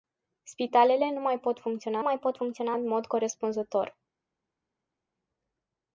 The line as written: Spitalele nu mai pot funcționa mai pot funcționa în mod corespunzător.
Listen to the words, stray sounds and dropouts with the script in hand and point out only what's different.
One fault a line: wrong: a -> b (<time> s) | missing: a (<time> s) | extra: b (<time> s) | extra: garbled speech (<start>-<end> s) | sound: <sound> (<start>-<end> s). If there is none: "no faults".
no faults